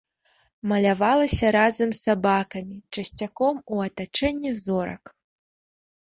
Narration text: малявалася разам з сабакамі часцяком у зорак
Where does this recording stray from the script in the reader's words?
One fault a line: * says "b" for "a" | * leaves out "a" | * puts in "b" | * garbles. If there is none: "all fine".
* puts in "атачэнні"